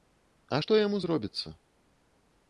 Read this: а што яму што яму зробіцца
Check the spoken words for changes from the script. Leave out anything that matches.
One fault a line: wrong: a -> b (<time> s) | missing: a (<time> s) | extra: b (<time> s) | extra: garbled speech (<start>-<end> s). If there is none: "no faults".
missing: што яму (1.0 s)